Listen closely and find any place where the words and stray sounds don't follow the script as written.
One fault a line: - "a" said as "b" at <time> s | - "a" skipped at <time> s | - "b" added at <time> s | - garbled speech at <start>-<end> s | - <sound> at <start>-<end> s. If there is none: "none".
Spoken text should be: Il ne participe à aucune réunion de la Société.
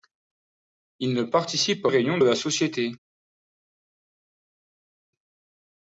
- "aucune" skipped at 1.9 s